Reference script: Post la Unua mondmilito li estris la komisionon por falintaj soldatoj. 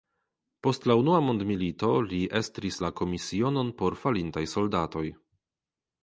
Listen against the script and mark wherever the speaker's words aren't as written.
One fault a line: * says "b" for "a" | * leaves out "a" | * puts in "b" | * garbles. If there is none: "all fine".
all fine